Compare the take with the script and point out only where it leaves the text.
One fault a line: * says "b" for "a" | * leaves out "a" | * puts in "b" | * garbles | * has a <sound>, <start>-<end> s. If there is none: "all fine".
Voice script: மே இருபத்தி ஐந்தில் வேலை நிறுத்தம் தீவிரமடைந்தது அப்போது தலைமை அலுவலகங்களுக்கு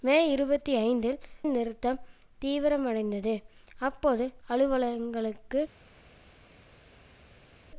* leaves out "வேலை"
* leaves out "தலைமை"